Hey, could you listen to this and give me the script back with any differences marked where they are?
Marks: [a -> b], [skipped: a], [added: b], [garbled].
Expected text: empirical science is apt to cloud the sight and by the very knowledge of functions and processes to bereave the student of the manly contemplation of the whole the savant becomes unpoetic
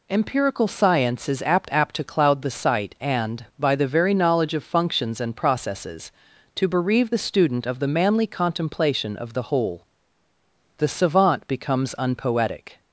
empirical science is apt [added: apt] to cloud the sight and by the very knowledge of functions and processes to bereave the student of the manly contemplation of the whole the savant becomes unpoetic